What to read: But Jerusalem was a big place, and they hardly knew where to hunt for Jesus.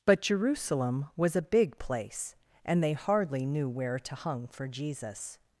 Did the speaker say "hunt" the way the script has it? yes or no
no